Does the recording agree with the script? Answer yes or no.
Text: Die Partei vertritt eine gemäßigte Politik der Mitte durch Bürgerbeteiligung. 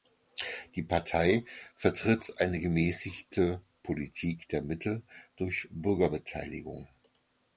yes